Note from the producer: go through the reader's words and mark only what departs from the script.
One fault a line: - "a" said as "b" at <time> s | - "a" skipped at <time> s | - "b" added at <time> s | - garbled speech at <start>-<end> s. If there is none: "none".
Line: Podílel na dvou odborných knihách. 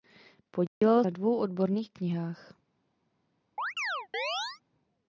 none